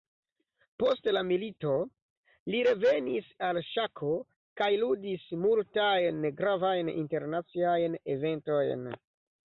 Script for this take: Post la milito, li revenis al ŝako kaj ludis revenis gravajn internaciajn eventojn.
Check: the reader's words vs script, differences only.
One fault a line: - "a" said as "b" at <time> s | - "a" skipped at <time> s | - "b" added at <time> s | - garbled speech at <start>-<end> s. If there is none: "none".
- "revenis" said as "multajn" at 5.4 s